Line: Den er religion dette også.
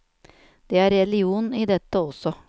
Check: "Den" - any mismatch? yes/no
yes